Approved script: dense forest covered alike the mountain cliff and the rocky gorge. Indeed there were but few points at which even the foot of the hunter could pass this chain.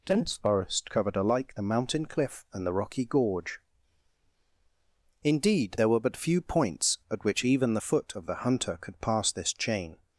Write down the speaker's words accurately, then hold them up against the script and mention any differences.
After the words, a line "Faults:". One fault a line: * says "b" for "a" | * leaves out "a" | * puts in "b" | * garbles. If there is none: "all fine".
dense forest covered alike the mountain cliff and the rocky gorge. Indeed there were but few points at which even the foot of the hunter could pass this chain.
Faults:
all fine